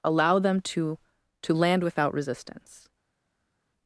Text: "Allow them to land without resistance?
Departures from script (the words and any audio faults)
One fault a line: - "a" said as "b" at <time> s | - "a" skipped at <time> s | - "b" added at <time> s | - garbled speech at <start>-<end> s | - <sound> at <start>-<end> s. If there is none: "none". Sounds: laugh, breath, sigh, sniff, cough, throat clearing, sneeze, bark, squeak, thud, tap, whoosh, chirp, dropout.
- "to" added at 1.4 s